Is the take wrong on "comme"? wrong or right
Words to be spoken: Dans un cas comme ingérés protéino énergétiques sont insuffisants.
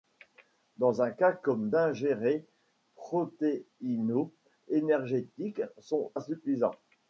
right